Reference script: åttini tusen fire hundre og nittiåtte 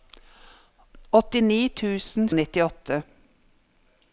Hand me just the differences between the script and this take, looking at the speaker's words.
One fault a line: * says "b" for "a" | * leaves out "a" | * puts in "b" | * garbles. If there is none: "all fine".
* leaves out "fire hundre"